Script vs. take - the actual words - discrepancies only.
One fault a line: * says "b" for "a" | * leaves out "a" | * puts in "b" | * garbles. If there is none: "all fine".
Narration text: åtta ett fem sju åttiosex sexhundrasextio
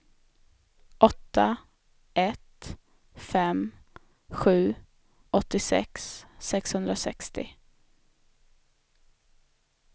all fine